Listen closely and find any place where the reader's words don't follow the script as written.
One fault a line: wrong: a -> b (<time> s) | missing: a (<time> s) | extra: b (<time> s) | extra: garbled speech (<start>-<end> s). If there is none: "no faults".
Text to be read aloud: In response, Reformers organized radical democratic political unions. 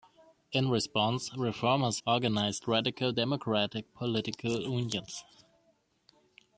no faults